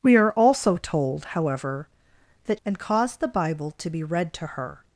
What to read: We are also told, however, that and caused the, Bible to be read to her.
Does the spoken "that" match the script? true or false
true